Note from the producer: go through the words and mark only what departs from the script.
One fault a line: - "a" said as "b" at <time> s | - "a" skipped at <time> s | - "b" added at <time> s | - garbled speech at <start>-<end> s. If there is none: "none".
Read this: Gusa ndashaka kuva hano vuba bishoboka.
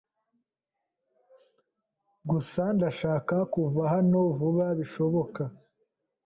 none